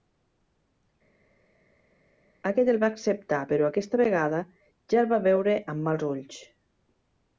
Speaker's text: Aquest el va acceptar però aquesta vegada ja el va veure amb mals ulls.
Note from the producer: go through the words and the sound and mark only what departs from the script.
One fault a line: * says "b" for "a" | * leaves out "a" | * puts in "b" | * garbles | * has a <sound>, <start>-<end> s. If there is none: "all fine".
all fine